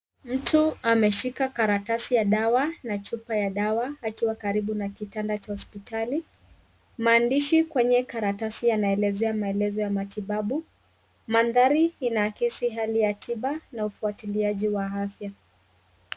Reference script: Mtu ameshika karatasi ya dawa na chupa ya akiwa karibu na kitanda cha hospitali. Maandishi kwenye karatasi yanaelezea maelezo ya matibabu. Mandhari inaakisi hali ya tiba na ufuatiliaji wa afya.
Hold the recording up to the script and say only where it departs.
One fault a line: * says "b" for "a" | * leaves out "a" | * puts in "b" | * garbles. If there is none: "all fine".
* puts in "dawa"